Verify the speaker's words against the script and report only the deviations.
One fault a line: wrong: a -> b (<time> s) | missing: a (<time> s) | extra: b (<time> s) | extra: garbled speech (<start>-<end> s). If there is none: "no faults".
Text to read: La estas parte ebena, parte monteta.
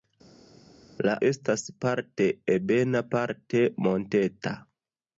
no faults